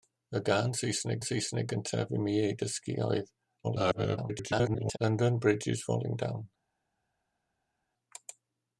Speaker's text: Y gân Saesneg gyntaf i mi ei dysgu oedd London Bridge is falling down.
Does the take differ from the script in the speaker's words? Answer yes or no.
yes